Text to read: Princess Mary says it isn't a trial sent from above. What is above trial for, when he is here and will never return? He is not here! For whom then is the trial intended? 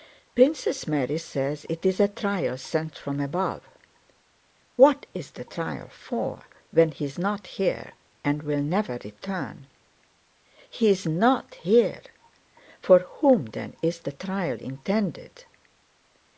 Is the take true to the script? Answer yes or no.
no